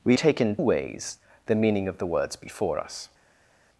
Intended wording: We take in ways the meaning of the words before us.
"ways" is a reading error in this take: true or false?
false